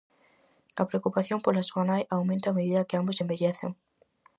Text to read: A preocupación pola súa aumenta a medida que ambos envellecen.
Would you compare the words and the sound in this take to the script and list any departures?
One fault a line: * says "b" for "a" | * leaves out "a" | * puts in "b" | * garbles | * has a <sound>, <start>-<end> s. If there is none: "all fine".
* puts in "nai"